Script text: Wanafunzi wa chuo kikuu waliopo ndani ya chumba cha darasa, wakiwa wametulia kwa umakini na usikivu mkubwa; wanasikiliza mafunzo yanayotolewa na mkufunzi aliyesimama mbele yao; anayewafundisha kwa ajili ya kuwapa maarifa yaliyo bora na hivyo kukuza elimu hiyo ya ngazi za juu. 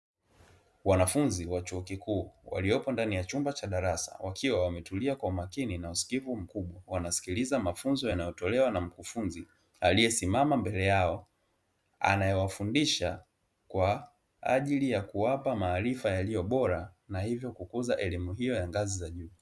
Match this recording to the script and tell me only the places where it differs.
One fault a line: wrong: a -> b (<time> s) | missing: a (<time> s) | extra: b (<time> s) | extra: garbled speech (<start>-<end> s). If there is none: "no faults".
no faults